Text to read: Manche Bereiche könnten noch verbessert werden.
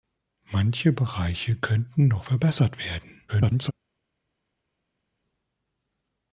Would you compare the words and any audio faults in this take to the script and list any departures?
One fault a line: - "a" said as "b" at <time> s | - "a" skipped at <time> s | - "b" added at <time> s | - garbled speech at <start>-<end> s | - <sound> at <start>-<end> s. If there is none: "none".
- garbled speech at 3.3-3.7 s